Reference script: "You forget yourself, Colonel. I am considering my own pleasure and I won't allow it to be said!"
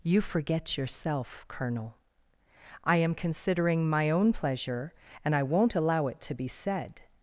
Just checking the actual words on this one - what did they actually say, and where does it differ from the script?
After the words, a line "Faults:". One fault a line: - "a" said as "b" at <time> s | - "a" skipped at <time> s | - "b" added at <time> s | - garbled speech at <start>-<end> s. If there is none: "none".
"You forget yourself, Colonel. I am considering my own pleasure and I won't allow it to be said!"
Faults:
none